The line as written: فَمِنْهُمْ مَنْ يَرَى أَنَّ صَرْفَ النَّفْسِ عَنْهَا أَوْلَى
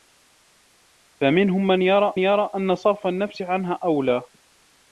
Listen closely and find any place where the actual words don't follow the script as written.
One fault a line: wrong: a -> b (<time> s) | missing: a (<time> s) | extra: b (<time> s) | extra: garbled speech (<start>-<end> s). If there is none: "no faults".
extra: يَرَى (2.2 s)